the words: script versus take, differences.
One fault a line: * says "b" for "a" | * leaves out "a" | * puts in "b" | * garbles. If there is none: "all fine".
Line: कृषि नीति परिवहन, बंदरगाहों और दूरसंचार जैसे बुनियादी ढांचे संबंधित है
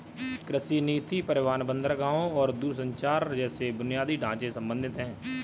all fine